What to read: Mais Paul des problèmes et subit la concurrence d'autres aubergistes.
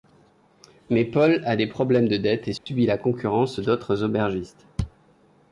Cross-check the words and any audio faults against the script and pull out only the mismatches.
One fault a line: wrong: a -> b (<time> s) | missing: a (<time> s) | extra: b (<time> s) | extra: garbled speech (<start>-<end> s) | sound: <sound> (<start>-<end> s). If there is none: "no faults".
extra: a (1.4 s)
extra: de dettes (2.1 s)
sound: dropout (2.6-2.7 s)